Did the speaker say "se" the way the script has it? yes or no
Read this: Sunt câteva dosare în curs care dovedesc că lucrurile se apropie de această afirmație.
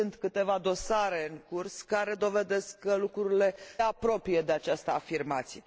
no